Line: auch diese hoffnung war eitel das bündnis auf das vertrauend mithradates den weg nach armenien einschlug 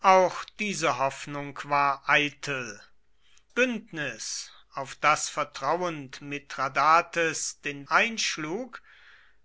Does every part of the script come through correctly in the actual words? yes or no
no